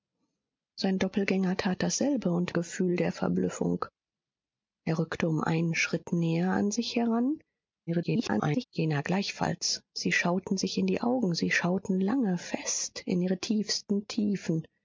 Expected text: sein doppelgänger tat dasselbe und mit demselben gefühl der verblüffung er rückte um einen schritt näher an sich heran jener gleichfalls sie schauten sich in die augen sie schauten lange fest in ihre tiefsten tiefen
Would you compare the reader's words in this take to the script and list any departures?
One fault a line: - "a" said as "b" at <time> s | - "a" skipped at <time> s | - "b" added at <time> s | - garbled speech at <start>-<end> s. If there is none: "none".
- "mit demselben" skipped at 2.5 s
- garbled speech at 7.9-8.6 s